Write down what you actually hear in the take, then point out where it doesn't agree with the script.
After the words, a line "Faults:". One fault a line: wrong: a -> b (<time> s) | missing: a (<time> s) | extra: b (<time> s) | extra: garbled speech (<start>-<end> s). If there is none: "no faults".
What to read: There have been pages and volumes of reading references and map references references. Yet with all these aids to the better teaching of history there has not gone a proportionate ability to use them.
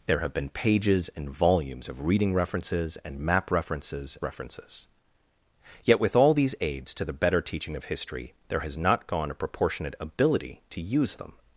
There have been pages and volumes of reading references and map references references. Yet with all these aids to the better teaching of history there has not gone a proportionate ability to use them.
Faults:
no faults